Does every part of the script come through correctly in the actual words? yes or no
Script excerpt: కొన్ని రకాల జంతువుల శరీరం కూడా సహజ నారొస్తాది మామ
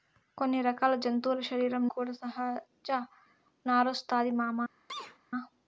yes